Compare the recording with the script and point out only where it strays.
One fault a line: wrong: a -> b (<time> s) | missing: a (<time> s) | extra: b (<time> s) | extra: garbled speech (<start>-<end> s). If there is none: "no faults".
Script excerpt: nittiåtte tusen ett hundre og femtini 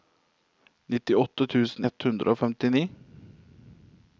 no faults